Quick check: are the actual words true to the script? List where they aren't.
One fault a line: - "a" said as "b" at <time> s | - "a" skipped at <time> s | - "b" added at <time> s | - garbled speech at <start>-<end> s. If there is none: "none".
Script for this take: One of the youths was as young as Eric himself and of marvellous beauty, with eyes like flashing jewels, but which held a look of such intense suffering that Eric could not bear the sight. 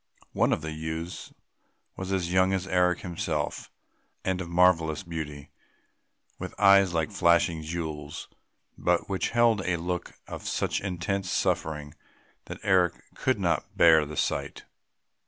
none